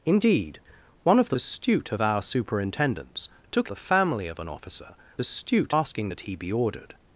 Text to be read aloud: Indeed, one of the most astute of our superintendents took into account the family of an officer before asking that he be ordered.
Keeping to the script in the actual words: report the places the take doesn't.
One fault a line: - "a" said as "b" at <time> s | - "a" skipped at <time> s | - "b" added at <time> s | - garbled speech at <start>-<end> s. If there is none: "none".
- "most" skipped at 1.4 s
- "into account" skipped at 3.7 s
- "before" said as "astute" at 5.2 s